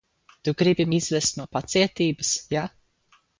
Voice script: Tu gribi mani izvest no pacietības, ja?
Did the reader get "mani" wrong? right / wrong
wrong